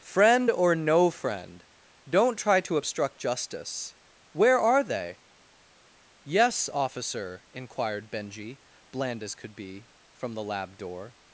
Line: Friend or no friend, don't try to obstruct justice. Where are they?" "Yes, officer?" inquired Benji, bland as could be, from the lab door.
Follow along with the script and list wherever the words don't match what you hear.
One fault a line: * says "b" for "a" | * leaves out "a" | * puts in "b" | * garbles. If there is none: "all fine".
all fine